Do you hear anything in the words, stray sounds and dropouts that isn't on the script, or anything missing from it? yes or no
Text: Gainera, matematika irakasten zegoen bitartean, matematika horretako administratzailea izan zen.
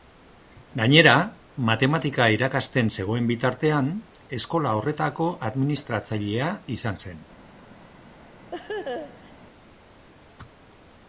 yes